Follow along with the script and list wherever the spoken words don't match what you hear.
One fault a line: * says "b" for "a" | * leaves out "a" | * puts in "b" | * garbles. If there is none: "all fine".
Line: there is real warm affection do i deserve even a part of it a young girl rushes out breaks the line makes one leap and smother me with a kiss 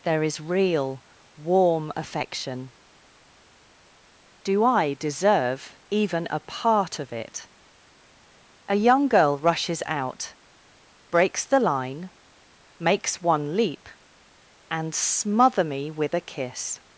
all fine